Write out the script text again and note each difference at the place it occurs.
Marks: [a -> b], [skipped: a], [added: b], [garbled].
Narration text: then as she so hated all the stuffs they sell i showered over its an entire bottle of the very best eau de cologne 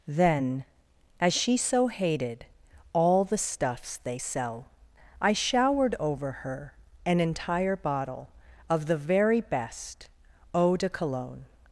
then as she so hated all the stuffs they sell i showered over [its -> her] an entire bottle of the very best eau de cologne